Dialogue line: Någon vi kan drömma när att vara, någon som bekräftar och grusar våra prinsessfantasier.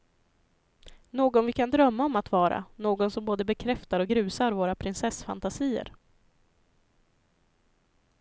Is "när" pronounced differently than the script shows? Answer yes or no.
yes